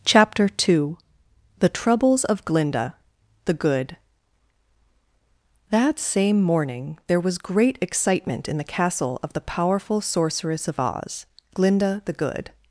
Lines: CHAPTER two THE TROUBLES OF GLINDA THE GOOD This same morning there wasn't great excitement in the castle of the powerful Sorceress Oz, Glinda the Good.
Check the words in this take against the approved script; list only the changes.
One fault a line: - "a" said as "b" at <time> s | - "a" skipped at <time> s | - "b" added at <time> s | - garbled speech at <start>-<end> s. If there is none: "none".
- "This" said as "That" at 5.7 s
- "wasn't" said as "was" at 7.2 s
- "of" added at 10.7 s